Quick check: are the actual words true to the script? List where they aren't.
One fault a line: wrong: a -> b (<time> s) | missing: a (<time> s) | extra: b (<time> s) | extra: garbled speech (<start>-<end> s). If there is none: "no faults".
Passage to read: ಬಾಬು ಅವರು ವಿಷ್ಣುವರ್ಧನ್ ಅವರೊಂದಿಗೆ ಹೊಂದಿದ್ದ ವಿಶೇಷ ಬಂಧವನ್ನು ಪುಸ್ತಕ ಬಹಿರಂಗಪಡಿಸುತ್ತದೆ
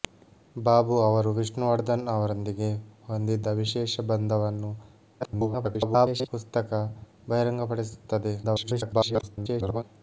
extra: garbled speech (5.2-6.3 s)
extra: garbled speech (8.4-9.8 s)